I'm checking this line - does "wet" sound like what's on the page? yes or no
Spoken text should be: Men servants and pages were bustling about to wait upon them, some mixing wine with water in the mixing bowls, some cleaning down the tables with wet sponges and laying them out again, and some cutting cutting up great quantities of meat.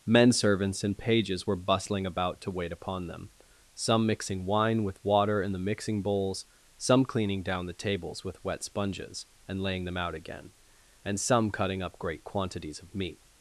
yes